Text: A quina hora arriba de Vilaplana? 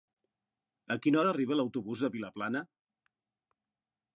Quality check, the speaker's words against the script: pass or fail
fail